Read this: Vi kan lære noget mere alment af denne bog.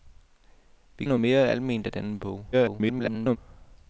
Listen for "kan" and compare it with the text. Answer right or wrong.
wrong